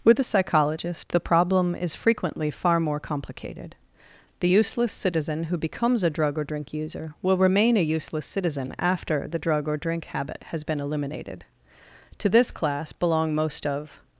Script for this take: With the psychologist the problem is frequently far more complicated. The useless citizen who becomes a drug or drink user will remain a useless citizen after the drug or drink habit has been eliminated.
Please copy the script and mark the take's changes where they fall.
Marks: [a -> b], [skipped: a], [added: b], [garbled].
With the psychologist the problem is frequently far more complicated. The useless citizen who becomes a drug or drink user will remain a useless citizen after the drug or drink habit has been eliminated. [added: To this class belong most of]